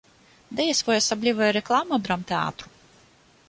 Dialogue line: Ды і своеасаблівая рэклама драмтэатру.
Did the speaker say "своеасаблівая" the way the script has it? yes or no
yes